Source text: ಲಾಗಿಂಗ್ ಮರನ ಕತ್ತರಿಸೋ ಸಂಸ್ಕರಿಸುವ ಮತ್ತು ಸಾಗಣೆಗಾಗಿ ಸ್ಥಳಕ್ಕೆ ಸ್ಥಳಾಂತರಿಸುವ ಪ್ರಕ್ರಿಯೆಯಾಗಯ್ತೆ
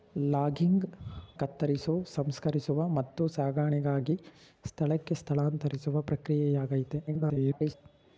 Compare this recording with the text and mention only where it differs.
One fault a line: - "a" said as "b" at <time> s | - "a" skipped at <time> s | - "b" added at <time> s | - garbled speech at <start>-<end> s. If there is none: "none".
- "ಮರನ" skipped at 0.9 s
- garbled speech at 7.1-7.7 s